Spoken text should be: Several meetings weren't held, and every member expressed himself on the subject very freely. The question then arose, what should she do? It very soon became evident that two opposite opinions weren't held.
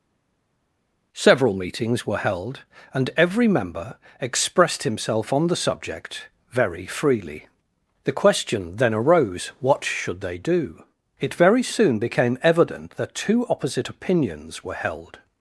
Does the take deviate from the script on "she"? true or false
true